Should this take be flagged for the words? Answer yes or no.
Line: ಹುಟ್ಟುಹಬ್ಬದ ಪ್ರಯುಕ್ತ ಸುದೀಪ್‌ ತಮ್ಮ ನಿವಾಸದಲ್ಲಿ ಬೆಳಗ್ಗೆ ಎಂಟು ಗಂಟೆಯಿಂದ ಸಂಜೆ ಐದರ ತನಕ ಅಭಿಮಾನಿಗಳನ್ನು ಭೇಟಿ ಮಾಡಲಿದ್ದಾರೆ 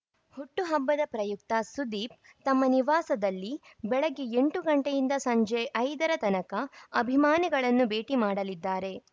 no